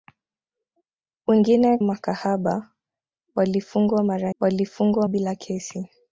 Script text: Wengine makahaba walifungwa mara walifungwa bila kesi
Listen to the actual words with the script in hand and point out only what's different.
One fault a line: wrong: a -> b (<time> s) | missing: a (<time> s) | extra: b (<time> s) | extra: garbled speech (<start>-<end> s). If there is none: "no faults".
no faults